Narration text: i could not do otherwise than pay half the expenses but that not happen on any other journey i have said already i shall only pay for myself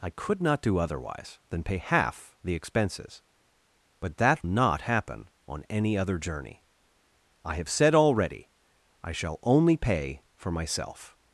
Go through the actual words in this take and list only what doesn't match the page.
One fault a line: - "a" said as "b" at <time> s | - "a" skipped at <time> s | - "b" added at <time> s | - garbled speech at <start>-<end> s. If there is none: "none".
none